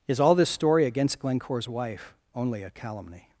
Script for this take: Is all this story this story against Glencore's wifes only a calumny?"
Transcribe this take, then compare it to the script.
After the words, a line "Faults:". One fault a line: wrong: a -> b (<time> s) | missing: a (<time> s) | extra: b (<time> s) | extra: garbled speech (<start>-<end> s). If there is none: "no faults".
Is all this story against Glencore's wife only a calumny?"
Faults:
missing: this story (0.8 s)
wrong: wifes -> wife (1.7 s)